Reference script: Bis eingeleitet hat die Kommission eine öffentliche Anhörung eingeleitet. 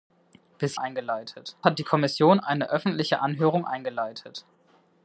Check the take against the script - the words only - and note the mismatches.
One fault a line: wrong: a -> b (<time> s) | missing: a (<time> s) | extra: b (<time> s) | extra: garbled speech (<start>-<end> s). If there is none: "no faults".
no faults